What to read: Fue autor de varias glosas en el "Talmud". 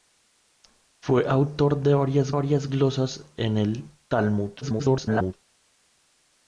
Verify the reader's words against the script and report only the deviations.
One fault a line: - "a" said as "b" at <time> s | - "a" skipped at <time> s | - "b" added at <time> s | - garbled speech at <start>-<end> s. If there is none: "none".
- "varias" added at 2.3 s
- garbled speech at 4.6-5.3 s